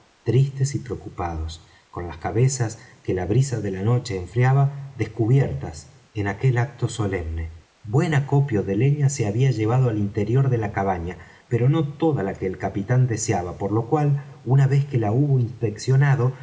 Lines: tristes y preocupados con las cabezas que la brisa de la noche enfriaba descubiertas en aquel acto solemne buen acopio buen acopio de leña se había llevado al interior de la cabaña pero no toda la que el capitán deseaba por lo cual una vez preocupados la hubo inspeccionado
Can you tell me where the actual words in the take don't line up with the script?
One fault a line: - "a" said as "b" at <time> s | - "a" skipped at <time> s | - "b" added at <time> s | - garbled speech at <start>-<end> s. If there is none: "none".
- "buen acopio" skipped at 8.6 s
- "preocupados" said as "que" at 14.8 s